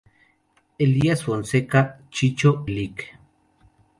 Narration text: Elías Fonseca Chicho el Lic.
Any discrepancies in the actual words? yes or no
no